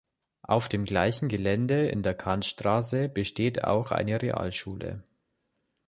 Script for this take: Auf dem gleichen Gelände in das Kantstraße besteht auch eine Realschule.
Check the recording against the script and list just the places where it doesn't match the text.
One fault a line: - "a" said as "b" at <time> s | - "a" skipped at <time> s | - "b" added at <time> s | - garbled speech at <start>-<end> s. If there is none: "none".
- "das" said as "der" at 2.0 s